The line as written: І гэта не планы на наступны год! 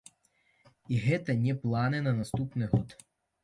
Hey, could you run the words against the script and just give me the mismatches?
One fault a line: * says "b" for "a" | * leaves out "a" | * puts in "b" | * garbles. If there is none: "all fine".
all fine